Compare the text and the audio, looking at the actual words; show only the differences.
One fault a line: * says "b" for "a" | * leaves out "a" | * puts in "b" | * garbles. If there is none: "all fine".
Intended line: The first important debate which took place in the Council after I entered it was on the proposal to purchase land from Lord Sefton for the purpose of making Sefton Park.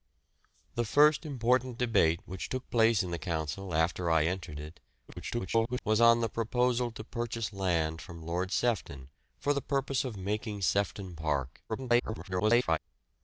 * garbles
* garbles